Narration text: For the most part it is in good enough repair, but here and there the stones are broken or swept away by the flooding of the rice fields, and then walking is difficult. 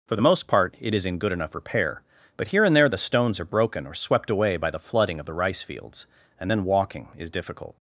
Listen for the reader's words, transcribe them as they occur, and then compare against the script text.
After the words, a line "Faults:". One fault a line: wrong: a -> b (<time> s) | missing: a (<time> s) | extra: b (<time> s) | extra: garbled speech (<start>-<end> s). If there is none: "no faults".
For the most part it is in good enough repair, but here and there the stones are broken or swept away by the flooding of the rice fields, and then walking is difficult.
Faults:
no faults